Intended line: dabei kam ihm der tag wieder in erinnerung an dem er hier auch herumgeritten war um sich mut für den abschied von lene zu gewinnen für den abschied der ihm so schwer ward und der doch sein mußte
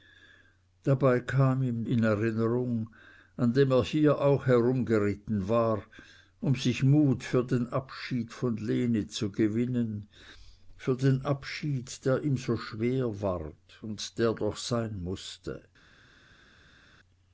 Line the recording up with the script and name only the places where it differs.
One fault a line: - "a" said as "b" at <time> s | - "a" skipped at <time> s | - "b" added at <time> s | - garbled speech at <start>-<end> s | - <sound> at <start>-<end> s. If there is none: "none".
- "der tag wieder" skipped at 1.9 s